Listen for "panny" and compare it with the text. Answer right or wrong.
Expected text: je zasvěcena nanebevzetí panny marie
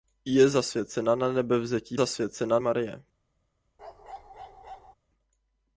wrong